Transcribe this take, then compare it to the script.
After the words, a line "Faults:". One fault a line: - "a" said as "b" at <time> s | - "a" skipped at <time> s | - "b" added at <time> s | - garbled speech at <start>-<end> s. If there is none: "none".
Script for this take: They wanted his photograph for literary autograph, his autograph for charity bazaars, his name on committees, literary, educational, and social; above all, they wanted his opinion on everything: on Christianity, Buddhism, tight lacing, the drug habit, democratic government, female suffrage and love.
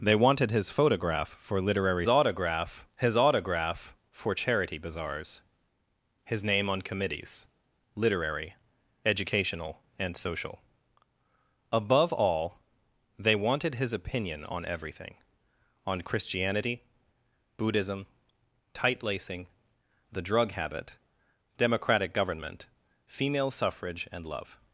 They wanted his photograph for literary autograph, his autograph for charity bazaars, his name on committees, literary, educational, and social; above all, they wanted his opinion on everything: on Christianity, Buddhism, tight lacing, the drug habit, democratic government, female suffrage and love.
Faults:
none